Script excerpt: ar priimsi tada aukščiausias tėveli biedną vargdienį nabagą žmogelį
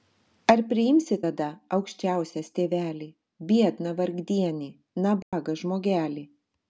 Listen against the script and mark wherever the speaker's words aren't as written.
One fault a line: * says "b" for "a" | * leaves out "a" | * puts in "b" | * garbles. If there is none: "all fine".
all fine